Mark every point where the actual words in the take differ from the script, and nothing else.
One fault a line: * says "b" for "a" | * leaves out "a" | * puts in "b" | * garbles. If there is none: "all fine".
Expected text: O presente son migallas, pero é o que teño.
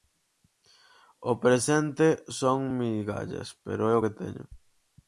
all fine